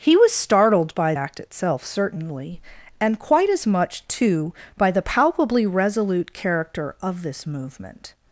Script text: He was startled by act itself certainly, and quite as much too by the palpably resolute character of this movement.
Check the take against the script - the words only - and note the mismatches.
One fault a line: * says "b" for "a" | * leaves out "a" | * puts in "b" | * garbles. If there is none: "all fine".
all fine